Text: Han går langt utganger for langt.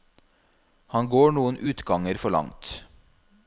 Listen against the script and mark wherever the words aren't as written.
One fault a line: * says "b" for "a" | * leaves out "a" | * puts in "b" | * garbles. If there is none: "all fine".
* says "noen" for "langt"